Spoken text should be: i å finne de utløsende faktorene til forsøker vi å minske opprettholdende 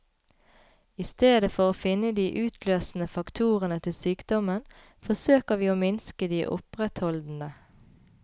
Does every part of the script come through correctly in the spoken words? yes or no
no